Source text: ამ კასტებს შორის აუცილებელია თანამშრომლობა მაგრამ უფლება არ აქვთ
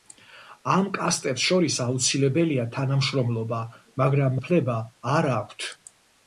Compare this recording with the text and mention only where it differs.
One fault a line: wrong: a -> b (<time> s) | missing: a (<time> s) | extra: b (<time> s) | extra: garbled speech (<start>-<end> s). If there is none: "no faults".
no faults